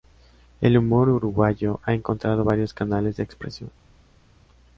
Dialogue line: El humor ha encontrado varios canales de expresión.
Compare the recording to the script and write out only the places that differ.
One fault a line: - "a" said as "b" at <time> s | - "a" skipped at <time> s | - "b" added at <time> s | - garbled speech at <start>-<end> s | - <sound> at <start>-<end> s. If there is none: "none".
- "uruguayo" added at 1.1 s